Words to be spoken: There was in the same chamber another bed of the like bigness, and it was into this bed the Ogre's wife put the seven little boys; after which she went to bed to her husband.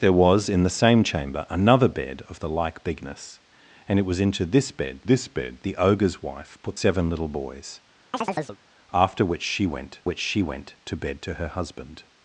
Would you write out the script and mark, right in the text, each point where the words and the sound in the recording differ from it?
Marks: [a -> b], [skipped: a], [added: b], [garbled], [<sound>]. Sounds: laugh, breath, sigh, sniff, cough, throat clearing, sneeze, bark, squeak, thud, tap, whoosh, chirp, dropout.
There was in the same chamber another bed of the like bigness, and it was into this bed [added: this bed] the Ogre's wife put [skipped: the] seven little boys; [chirp] after which she went [added: which she went] to bed to her husband.